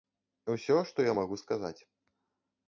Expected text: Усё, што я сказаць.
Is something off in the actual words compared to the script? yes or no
yes